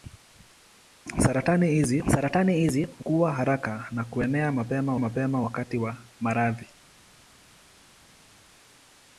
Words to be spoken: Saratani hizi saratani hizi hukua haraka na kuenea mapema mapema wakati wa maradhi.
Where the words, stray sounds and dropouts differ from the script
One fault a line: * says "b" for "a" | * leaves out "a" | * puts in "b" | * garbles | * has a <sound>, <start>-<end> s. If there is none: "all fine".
all fine